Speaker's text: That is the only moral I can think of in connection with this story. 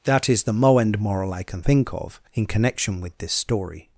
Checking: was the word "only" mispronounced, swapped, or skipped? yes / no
yes